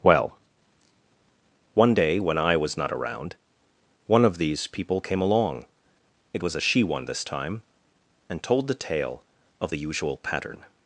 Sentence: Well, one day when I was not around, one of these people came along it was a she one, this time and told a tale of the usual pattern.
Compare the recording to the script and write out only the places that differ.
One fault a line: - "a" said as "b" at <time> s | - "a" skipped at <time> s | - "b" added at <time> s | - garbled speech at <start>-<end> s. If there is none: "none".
- "a" said as "the" at 8.7 s